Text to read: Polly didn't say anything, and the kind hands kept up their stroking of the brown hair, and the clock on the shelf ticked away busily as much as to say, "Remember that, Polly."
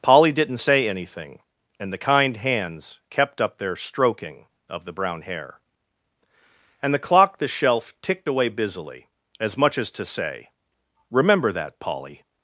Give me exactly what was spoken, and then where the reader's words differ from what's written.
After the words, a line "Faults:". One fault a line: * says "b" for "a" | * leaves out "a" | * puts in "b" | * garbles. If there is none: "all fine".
Polly didn't say anything, and the kind hands kept up their stroking of the brown hair, and the clock the shelf ticked away busily as much as to say, "Remember that, Polly."
Faults:
* leaves out "on"